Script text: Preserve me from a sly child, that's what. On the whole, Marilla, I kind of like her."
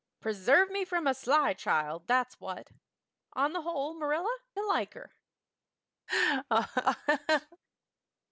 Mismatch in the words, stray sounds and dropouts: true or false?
true